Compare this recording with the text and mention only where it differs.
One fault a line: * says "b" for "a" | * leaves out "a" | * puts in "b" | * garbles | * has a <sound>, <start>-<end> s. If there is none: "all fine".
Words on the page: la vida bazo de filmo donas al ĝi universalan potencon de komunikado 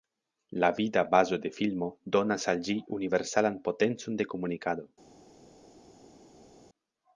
all fine